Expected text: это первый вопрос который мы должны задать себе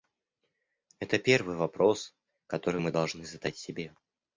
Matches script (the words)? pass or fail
pass